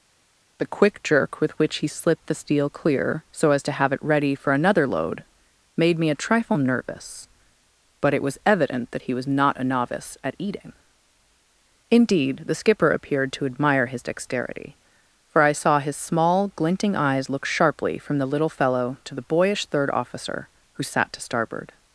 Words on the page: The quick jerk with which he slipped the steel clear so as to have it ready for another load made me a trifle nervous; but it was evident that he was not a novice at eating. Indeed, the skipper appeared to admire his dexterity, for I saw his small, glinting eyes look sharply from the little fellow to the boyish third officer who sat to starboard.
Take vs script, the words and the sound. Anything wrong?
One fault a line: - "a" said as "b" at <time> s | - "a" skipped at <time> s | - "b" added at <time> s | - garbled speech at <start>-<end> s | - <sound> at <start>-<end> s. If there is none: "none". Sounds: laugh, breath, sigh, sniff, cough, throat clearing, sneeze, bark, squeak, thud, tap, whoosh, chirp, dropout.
none